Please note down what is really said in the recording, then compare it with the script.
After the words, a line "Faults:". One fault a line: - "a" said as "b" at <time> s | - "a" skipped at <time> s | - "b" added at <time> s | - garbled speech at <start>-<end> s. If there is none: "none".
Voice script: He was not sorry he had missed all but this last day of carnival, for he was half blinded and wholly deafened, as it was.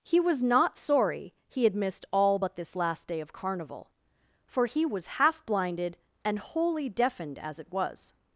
He was not sorry he had missed all but this last day of carnival, for he was half blinded and wholly deafened, as it was.
Faults:
none